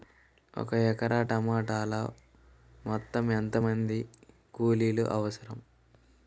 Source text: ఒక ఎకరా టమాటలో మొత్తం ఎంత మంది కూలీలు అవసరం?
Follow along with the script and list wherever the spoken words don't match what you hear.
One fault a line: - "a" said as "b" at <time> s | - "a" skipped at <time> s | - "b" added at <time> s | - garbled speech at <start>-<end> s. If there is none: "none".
none